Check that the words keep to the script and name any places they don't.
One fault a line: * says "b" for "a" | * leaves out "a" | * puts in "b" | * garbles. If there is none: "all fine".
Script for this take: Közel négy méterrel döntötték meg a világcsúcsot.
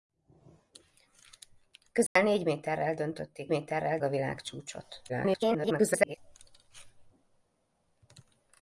* says "méterrel" for "meg"
* garbles